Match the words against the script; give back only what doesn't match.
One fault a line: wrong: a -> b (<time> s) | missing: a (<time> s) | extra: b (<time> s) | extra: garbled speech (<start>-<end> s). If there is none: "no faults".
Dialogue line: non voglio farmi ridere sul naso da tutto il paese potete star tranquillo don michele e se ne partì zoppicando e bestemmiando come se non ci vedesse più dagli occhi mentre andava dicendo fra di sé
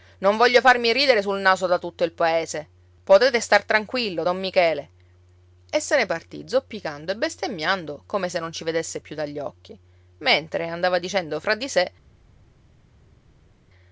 no faults